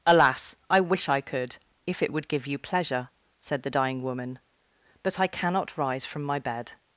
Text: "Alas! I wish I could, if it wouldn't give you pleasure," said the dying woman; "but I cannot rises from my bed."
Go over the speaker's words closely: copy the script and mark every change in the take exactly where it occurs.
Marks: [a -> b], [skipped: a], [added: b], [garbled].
"Alas! I wish I could, if it [wouldn't -> would] give you pleasure," said the dying woman; "but I cannot [rises -> rise] from my bed."